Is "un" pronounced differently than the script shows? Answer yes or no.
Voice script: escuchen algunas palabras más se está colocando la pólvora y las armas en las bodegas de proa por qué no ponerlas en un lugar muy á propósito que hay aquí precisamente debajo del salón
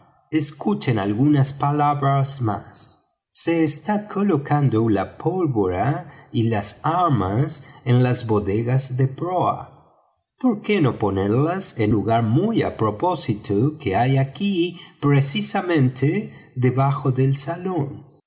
yes